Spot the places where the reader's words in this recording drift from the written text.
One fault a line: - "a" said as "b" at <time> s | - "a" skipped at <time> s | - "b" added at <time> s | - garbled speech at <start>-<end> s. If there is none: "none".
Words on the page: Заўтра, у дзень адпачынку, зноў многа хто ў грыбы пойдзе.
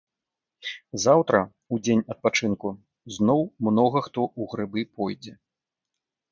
none